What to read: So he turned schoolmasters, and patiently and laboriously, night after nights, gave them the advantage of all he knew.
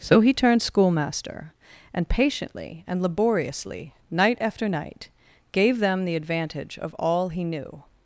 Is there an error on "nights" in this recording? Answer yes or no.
yes